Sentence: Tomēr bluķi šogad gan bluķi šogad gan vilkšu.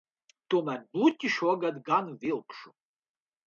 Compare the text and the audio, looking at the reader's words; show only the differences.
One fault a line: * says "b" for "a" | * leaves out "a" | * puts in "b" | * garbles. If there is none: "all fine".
* leaves out "bluķi šogad gan"